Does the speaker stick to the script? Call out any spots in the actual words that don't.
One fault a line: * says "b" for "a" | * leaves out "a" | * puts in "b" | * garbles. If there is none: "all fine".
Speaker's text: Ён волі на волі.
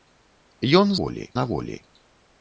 all fine